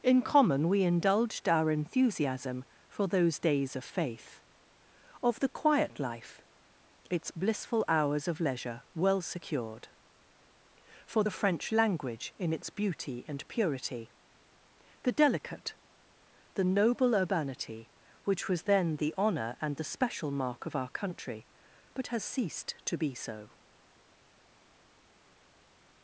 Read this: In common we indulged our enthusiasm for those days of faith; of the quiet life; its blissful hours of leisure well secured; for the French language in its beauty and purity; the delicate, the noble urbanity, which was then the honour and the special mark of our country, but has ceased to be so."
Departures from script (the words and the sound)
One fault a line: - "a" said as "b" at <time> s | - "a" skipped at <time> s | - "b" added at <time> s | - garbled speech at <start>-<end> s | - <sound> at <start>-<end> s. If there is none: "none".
none